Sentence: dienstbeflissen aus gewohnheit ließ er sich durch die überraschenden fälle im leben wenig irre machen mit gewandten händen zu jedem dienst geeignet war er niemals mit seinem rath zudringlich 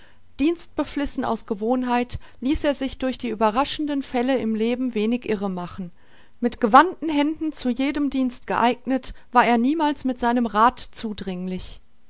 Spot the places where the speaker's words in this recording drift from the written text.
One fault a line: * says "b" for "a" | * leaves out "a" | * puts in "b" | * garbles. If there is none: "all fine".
all fine